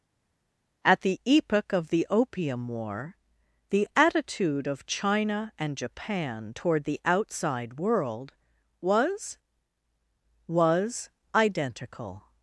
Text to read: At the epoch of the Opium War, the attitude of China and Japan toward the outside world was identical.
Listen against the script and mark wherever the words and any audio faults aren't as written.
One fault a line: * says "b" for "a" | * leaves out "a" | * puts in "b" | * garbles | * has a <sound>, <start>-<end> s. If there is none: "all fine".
* puts in "was"